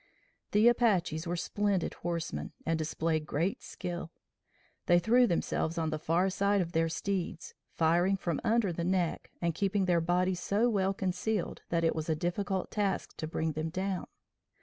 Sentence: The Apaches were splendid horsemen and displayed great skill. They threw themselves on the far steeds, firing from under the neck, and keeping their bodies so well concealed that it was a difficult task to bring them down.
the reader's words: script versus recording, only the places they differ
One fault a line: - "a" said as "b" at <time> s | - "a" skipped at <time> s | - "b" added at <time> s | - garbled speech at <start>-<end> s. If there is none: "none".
- "side of their" added at 6.3 s